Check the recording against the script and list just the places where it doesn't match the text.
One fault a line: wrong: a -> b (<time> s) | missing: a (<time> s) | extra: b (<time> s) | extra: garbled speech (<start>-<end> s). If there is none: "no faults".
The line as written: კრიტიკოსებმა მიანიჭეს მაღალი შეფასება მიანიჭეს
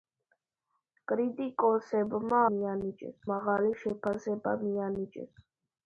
no faults